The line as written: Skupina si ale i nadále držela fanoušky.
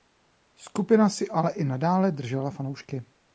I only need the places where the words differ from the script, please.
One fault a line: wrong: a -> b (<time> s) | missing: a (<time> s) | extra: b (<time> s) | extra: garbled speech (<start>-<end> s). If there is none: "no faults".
no faults